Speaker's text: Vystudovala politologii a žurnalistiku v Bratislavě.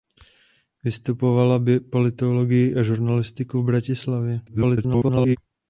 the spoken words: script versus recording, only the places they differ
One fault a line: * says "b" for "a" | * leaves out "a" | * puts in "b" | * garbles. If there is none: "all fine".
* garbles